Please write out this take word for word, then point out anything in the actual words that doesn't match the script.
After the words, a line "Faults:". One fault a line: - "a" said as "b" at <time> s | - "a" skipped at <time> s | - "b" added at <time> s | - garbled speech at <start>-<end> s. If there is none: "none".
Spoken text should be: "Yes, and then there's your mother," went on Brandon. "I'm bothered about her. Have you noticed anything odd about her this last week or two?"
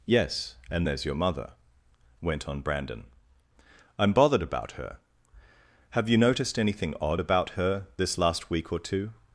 "Yes, and there's your mother," went on Brandon. "I'm bothered about her. Have you noticed anything odd about her this last week or two?"
Faults:
- "then" skipped at 0.9 s